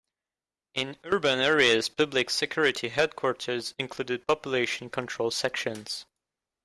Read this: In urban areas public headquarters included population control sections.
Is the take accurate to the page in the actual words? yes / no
no